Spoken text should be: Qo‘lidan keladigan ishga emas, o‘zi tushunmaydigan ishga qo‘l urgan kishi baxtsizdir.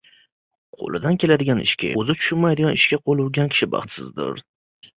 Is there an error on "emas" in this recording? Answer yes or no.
yes